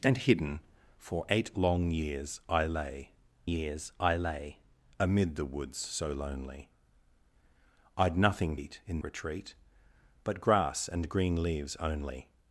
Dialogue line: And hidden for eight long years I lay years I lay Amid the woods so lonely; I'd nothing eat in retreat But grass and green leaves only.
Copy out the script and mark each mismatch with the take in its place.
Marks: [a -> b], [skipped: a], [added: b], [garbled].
And hidden for eight long years I lay years I lay Amid the woods so lonely; I'd nothing eat in retreat But grass and green leaves only.